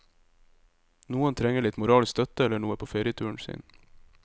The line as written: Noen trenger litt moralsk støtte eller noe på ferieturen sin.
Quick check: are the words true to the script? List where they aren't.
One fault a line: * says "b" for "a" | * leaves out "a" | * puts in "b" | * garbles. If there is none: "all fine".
all fine